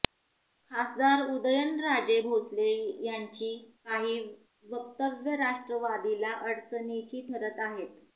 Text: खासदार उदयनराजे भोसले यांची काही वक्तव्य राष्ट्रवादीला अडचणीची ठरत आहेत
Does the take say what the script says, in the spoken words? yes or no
yes